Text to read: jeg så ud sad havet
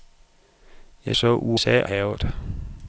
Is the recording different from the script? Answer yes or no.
no